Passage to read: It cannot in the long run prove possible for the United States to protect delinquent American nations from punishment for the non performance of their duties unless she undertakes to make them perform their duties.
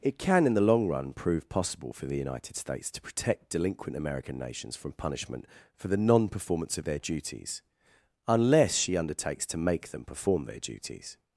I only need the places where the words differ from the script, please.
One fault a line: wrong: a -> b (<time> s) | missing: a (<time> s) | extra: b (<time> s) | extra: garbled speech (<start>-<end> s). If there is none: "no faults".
wrong: cannot -> can (0.2 s)